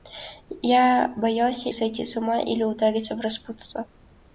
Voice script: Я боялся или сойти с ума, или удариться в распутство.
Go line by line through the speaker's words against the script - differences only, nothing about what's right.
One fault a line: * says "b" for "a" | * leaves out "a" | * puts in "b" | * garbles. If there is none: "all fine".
* leaves out "или"